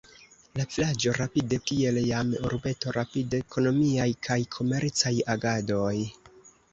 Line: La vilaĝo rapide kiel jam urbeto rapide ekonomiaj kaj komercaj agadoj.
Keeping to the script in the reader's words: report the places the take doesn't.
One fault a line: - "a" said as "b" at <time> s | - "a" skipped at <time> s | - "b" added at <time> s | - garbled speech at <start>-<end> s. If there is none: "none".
none